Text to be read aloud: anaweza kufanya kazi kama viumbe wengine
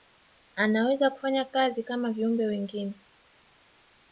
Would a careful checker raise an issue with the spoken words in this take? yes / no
no